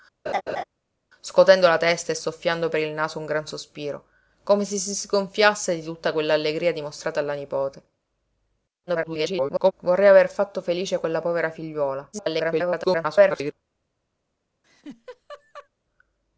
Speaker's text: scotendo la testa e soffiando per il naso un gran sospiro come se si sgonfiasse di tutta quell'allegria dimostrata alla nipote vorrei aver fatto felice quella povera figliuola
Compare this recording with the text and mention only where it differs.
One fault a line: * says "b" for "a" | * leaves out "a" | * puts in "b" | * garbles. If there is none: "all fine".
* garbles
* garbles